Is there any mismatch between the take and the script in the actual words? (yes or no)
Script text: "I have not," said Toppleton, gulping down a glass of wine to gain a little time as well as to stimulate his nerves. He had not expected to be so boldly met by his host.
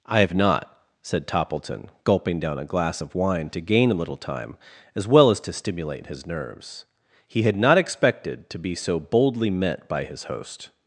no